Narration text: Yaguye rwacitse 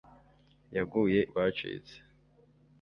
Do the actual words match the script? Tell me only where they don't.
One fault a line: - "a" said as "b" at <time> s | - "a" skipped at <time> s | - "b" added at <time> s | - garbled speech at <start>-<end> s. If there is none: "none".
none